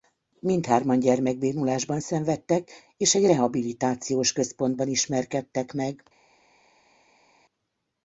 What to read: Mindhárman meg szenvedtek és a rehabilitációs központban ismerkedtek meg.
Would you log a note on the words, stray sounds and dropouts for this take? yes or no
yes